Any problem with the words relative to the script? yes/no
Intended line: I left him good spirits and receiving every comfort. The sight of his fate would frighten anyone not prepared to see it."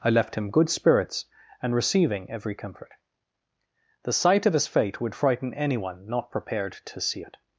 no